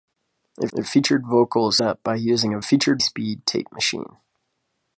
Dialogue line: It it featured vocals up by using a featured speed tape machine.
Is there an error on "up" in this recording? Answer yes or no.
no